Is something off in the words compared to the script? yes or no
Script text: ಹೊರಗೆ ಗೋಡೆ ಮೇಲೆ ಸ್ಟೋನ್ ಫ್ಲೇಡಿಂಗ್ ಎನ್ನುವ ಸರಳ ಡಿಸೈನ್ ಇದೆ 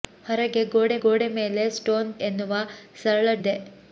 yes